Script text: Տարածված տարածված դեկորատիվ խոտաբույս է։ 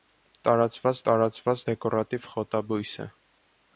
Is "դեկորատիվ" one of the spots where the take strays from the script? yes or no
no